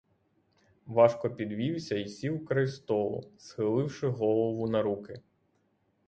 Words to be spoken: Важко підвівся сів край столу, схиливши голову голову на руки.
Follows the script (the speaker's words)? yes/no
no